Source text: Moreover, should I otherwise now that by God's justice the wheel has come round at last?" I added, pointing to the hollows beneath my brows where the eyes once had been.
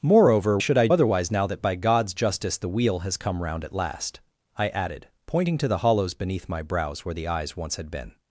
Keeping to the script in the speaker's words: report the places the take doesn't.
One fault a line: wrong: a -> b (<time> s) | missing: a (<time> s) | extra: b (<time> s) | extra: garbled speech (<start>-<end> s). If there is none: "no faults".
no faults